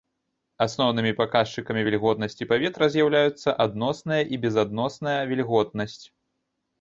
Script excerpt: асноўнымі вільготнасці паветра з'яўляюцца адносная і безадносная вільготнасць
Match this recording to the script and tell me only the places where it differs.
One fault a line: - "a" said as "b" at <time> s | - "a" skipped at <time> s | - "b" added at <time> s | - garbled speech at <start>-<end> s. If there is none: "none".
- "паказчыкамі" added at 1.2 s